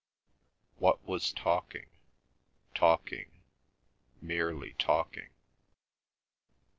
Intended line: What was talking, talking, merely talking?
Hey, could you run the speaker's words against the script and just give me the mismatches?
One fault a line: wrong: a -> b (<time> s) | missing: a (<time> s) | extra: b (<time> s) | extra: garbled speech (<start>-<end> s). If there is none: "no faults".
no faults